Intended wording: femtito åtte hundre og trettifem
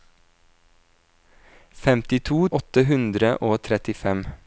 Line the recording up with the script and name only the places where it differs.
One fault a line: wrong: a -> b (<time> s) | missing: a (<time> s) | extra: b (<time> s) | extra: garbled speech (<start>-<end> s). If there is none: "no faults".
no faults